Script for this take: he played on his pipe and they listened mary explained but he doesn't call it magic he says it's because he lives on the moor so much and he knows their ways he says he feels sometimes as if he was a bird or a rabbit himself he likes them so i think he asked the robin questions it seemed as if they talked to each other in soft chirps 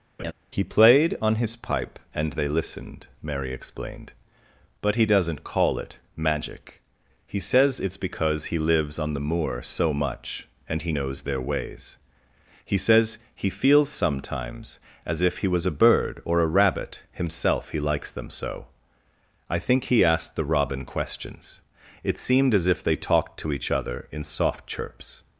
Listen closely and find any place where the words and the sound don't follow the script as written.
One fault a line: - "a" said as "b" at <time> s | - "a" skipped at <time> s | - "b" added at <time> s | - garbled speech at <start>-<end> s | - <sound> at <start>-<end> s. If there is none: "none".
- laugh at 0.2-0.3 s